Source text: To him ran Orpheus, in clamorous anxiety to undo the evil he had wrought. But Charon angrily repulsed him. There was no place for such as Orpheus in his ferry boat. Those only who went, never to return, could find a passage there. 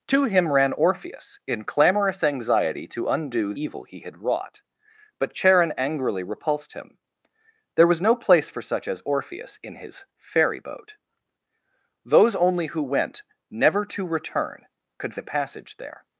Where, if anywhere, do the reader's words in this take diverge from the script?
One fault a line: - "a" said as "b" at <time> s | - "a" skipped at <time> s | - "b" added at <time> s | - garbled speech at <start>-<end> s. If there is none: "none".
- "the" skipped at 3.5 s
- "find" skipped at 15.1 s